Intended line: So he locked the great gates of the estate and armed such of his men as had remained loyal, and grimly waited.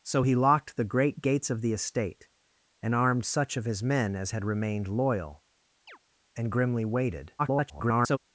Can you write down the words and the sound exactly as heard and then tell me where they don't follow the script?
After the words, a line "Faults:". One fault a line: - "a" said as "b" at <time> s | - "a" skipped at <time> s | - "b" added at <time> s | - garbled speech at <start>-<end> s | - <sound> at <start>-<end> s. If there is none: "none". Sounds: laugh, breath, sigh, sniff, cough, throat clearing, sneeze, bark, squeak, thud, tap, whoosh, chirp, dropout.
So he locked the great gates of the estate and armed such of his men as had remained loyal, and grimly waited. [garbled]
Faults:
- chirp at 5.9-6.0 s
- garbled speech at 7.4-8.2 s